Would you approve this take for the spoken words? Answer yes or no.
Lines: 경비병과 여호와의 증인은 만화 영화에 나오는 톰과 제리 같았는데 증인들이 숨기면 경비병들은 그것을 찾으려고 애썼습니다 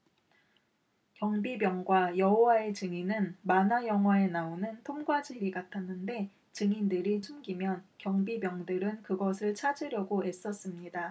yes